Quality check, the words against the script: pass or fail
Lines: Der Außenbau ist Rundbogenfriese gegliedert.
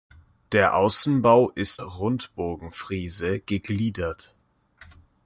pass